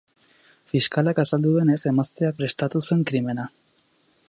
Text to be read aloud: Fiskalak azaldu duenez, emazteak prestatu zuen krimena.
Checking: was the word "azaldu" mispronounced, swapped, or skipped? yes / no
no